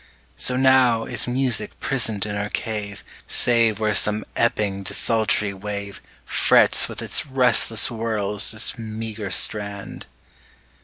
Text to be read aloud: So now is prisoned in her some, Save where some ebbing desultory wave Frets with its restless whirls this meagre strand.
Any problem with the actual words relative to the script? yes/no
yes